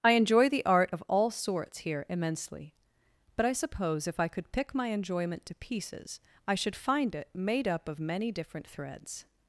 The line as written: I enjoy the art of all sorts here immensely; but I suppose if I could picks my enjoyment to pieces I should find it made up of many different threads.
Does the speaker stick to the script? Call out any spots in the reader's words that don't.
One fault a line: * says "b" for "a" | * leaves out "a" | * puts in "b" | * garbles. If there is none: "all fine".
* says "pick" for "picks"